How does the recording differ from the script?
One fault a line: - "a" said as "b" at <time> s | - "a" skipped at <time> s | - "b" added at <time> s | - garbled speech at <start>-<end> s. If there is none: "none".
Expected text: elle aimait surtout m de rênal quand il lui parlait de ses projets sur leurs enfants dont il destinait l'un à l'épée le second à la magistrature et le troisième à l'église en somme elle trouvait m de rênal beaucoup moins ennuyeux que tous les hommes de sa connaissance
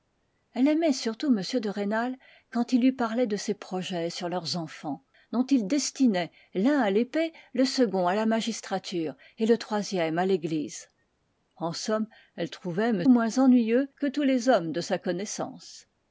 - "de rênal beaucoup" skipped at 13.0 s